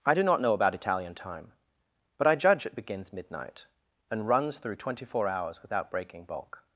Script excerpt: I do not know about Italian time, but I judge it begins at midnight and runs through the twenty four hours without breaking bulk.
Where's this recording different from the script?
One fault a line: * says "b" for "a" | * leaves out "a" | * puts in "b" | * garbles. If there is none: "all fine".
* leaves out "at"
* leaves out "the"